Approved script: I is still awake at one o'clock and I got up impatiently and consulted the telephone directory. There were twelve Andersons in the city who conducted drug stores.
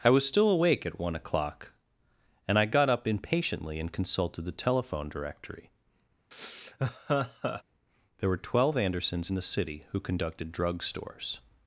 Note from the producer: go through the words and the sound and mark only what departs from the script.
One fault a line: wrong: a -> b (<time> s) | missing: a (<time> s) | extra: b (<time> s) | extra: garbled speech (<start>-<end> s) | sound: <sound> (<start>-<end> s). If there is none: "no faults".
wrong: is -> was (0.1 s)
sound: laugh (6.3-7.6 s)